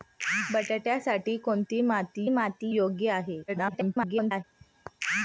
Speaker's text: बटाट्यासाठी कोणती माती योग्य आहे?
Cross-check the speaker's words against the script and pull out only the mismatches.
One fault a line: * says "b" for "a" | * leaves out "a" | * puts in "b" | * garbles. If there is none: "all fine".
* puts in "माती"
* garbles